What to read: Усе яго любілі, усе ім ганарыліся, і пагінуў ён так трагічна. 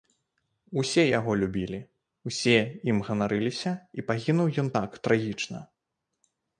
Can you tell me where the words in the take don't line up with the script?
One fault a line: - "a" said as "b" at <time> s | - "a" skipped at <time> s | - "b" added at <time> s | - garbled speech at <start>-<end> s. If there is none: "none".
none